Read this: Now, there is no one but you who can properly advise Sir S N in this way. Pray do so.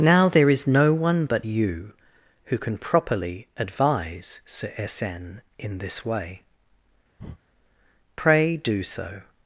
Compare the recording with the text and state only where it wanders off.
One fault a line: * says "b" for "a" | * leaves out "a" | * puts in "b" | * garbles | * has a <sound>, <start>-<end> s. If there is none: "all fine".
* has a breath, 7.2-7.4 s